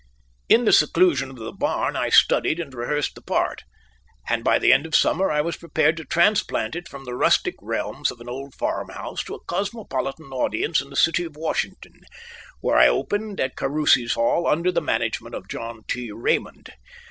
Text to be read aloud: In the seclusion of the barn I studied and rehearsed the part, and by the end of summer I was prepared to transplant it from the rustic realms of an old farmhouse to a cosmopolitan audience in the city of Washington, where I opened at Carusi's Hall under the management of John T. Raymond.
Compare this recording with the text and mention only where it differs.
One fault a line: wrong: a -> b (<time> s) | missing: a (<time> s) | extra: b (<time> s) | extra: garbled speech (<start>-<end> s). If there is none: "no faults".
no faults